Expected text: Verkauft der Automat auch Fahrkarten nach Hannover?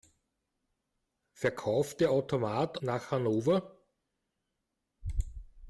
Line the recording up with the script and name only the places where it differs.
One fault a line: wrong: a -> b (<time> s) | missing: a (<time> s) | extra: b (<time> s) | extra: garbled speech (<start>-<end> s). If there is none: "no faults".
missing: auch Fahrkarten (2.8 s)